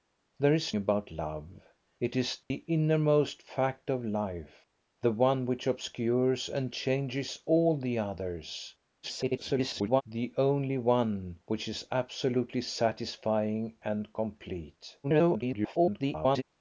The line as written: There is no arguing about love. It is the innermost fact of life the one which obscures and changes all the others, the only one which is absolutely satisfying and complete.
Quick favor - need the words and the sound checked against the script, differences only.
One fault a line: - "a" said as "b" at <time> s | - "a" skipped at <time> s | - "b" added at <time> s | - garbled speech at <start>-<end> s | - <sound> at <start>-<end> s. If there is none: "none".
- "no arguing" skipped at 0.7 s
- dropout at 2.4-2.5 s
- garbled speech at 9.0-10.0 s
- garbled speech at 15.0-16.4 s